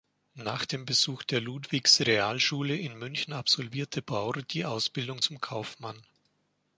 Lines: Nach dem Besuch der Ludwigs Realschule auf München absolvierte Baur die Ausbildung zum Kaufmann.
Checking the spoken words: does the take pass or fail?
fail